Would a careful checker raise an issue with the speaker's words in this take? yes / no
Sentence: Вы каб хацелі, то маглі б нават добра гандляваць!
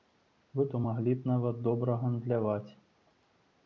yes